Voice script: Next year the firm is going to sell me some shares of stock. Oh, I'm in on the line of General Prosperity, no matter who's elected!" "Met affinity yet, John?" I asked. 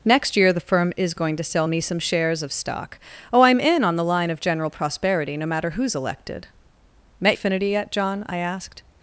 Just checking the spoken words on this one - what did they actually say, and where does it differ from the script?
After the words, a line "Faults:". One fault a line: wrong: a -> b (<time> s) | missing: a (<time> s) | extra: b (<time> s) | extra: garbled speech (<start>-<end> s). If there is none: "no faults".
Next year the firm is going to sell me some shares of stock. Oh, I'm in on the line of General Prosperity, no matter who's elected!" "Met affinity yet, John?" I asked.
Faults:
no faults